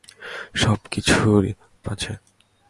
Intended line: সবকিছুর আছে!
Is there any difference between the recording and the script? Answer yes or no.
no